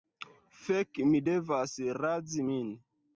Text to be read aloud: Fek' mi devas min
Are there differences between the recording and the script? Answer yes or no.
yes